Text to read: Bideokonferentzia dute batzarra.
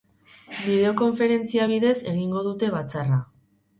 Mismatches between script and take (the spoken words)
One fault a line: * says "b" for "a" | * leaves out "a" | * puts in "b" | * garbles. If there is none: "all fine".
* puts in "bidez egingo"